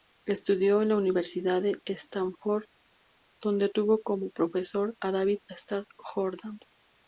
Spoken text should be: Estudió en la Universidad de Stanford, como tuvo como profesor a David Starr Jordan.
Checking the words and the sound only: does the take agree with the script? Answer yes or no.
no